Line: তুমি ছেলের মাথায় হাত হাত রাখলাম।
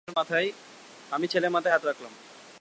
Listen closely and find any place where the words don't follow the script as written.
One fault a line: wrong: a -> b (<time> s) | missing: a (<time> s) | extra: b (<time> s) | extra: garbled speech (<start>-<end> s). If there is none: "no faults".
wrong: তুমি -> আমি (1.1 s)
missing: হাত (1.8 s)